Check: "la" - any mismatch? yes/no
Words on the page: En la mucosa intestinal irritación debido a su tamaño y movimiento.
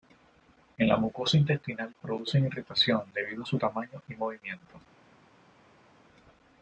no